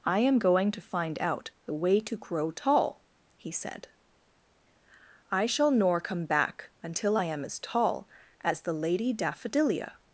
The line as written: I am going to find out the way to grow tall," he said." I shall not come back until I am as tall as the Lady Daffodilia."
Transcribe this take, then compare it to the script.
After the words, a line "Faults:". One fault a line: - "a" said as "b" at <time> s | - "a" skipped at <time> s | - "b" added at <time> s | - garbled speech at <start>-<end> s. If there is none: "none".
I am going to find out the way to grow tall," he said." I shall nor come back until I am as tall as the Lady Daffodilia."
Faults:
- "not" said as "nor" at 5.7 s